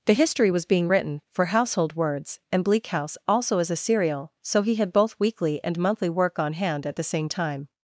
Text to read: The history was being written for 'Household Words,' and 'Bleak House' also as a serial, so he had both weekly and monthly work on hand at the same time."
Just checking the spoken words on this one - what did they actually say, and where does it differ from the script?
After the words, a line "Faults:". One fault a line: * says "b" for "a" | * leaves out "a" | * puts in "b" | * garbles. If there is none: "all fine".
The history was being written for 'Household Words,' and 'Bleak House' also as a serial, so he had both weekly and monthly work on hand at the same time."
Faults:
all fine